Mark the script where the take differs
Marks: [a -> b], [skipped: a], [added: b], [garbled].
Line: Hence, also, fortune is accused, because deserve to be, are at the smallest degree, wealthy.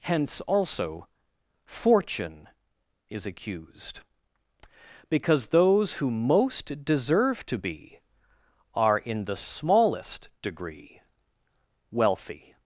Hence, also, fortune is accused, because [added: those who most] deserve to be, are [at -> in] the smallest degree, wealthy.